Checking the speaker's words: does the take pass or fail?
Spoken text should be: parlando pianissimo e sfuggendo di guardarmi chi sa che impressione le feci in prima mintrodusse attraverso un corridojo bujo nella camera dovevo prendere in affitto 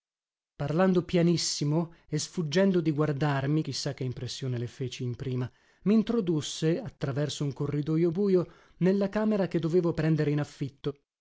fail